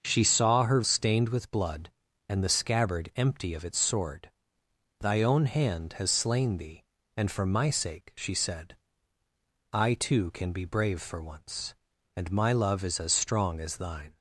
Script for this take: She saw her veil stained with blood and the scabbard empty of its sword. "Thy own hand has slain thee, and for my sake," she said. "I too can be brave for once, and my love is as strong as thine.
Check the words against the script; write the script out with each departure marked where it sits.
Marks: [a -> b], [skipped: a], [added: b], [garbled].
She saw her [skipped: veil] stained with blood and the scabbard empty of its sword. "Thy own hand has slain thee, and for my sake," she said. "I too can be brave for once, and my love is as strong as thine.